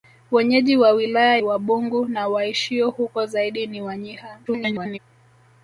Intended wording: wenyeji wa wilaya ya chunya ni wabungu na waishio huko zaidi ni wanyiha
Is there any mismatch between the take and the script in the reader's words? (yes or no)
yes